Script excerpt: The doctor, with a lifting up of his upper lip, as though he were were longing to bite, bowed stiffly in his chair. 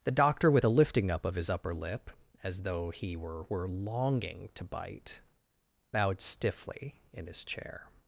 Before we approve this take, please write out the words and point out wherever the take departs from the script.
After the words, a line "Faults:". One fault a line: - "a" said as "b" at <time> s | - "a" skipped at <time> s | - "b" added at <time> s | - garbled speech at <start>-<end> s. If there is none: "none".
The doctor, with a lifting up of his upper lip, as though he were were longing to bite, bowed stiffly in his chair.
Faults:
none